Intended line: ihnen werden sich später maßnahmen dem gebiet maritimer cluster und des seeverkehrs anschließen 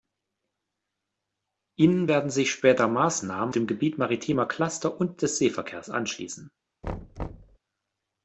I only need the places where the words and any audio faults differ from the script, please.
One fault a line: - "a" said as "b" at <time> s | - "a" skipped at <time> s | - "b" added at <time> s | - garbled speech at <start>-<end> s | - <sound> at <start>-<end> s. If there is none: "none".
- thud at 6.8-7.6 s